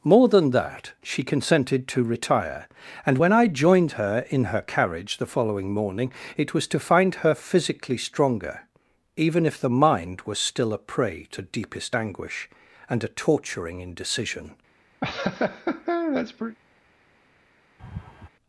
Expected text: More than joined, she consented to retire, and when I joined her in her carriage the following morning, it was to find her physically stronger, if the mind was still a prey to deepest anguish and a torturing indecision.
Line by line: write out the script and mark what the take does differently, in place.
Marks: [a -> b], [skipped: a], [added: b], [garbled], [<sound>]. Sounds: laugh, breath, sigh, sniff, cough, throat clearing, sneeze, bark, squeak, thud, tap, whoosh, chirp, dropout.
More than [joined, -> that] she consented to retire, and when I joined her in her carriage the following morning, it was to find her physically stronger, [added: even] if the mind was still a prey to deepest anguish and a torturing indecision. [laugh] [laugh]